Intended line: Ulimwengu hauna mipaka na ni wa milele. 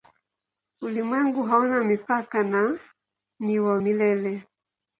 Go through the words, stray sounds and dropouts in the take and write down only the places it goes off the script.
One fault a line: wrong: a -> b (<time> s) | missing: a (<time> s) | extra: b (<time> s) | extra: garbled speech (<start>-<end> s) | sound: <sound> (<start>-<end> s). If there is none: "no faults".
no faults